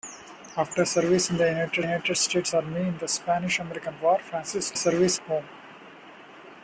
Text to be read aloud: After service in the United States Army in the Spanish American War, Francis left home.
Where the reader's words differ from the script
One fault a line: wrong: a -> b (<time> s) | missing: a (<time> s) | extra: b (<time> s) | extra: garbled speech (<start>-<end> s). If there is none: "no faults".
extra: United (1.8 s)
wrong: left -> service (4.7 s)